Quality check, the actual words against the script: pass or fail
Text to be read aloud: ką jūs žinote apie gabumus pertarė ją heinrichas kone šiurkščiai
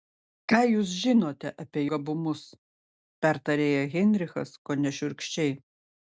pass